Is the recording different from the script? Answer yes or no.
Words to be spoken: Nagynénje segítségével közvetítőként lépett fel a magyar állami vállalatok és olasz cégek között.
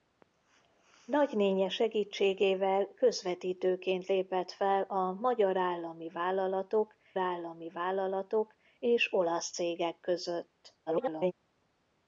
yes